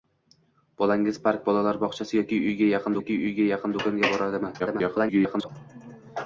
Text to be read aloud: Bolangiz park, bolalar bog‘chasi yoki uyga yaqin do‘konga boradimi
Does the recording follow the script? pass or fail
fail